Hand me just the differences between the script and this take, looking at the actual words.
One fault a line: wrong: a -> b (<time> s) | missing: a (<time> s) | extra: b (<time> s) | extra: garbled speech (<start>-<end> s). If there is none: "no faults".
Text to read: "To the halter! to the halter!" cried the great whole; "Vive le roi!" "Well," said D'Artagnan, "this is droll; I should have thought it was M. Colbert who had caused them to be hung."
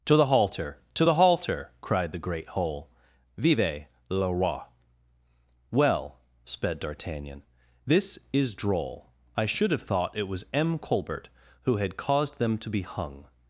wrong: said -> sped (6.4 s)